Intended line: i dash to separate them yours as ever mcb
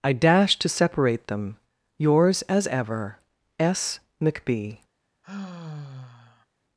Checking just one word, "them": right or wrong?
right